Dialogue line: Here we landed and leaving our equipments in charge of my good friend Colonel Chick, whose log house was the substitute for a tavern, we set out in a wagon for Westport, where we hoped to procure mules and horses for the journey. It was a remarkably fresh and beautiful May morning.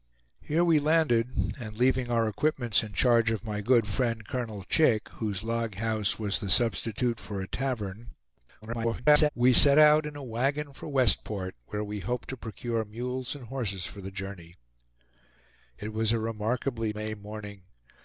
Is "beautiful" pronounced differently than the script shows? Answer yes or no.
yes